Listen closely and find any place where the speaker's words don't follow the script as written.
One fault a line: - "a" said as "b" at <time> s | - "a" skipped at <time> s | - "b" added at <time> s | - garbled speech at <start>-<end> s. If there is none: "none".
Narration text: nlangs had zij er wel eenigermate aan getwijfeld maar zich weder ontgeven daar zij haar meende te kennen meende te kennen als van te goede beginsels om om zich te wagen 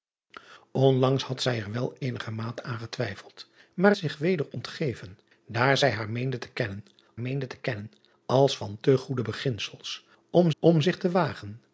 none